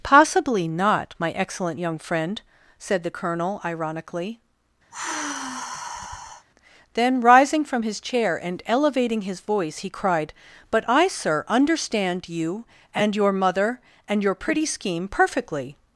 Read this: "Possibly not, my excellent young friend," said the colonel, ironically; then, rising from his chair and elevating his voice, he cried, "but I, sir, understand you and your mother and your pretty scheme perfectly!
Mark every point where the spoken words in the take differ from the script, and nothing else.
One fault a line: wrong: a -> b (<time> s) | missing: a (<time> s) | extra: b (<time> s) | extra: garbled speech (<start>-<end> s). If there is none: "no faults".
no faults